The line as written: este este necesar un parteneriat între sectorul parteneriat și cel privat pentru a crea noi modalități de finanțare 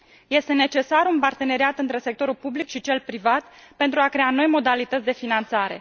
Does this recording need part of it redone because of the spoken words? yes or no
yes